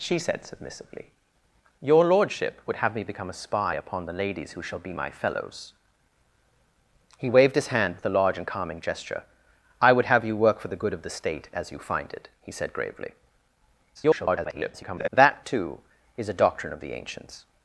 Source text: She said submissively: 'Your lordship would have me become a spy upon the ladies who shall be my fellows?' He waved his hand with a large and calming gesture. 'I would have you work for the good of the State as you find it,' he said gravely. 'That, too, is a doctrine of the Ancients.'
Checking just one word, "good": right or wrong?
right